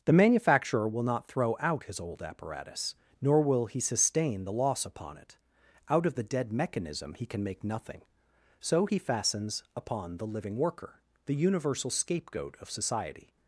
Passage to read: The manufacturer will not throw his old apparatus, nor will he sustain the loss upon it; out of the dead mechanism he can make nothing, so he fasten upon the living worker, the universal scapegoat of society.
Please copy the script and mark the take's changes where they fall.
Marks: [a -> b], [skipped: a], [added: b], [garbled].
The manufacturer will not throw [added: out] his old apparatus, nor will he sustain the loss upon it; out of the dead mechanism he can make nothing, so he [fasten -> fastens] upon the living worker, the universal scapegoat of society.